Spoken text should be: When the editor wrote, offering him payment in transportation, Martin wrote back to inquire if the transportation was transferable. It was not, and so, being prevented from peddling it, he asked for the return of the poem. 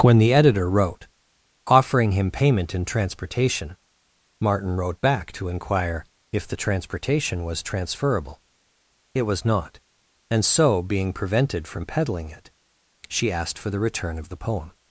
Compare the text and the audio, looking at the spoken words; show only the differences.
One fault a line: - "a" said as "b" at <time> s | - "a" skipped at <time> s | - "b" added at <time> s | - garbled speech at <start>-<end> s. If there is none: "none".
- "he" said as "she" at 13.1 s